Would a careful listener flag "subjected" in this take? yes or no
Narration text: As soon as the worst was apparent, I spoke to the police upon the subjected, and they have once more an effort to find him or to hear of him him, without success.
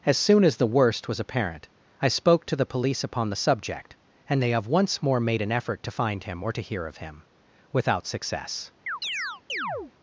yes